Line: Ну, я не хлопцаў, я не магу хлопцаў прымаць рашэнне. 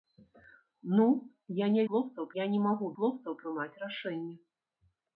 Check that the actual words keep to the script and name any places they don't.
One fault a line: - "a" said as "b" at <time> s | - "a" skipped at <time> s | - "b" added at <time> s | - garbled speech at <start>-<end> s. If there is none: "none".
none